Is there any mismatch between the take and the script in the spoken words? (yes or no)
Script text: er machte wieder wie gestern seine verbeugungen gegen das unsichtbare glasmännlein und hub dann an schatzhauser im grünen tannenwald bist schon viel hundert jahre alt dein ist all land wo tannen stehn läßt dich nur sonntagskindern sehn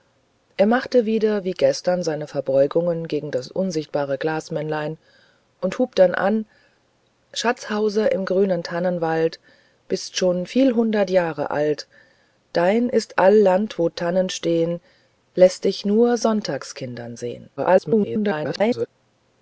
yes